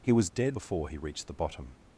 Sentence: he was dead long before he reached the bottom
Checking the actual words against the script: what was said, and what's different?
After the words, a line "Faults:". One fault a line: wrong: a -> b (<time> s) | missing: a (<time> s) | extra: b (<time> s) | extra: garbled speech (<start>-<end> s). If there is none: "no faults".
he was dead before he reached the bottom
Faults:
missing: long (0.6 s)